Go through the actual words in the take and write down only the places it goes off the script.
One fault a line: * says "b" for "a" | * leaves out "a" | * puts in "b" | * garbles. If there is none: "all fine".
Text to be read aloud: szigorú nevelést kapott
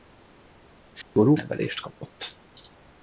all fine